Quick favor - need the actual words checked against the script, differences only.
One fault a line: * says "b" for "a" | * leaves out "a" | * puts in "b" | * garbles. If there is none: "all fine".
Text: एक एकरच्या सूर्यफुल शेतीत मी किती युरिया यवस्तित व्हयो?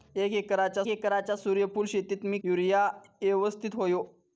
* puts in "एकरच्या"
* leaves out "किती"